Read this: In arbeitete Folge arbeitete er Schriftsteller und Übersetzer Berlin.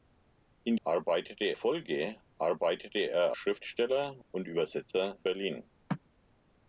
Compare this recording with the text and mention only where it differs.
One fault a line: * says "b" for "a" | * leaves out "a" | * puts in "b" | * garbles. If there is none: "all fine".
all fine